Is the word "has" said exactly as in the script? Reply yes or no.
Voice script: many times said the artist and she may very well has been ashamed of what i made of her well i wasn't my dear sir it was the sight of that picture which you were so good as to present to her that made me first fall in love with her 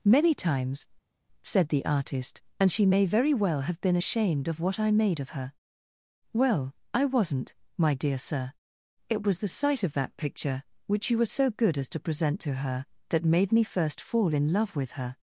no